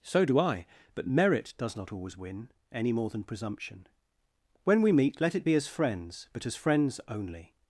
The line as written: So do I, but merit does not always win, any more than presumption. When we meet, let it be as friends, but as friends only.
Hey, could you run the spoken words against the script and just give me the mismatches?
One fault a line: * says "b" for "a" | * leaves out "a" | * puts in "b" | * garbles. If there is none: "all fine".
all fine